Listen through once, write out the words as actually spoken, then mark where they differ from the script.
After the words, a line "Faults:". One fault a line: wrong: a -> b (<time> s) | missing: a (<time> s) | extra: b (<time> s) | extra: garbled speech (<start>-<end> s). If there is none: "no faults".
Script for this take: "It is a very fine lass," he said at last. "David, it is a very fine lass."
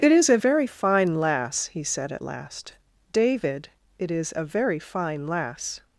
"It is a very fine lass," he said at last. "David, it is a very fine lass."
Faults:
no faults